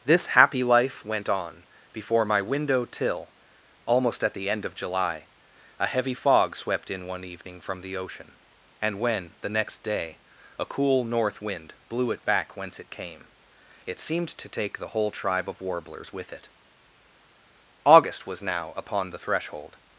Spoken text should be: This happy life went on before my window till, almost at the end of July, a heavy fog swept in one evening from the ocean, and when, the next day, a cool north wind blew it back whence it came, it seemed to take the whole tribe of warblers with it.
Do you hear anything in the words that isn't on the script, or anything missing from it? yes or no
yes